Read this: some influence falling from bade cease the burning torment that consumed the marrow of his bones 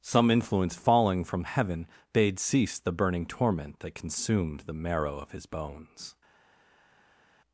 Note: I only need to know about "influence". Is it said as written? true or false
true